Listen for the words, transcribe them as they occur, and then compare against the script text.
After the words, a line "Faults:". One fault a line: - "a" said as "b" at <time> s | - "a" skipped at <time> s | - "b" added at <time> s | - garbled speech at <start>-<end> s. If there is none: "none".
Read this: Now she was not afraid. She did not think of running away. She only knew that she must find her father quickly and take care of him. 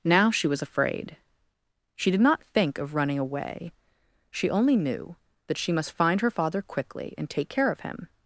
Now she was afraid. She did not think of running away. She only knew that she must find her father quickly and take care of him.
Faults:
- "not" skipped at 0.6 s